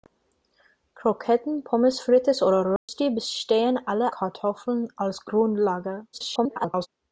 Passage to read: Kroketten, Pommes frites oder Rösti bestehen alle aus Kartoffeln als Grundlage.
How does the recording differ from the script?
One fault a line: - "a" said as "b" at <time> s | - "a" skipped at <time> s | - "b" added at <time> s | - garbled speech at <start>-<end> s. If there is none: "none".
- "aus" skipped at 4.2 s
- garbled speech at 6.1-6.9 s